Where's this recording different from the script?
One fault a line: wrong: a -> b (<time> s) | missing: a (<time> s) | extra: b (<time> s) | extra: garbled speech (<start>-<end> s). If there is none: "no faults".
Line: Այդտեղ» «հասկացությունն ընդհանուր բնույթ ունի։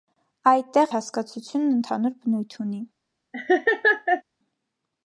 no faults